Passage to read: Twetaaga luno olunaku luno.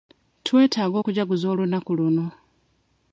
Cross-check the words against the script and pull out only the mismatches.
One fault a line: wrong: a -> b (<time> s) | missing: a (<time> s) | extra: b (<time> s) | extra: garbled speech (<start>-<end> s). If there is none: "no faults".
wrong: luno -> okujaguza (1.0 s)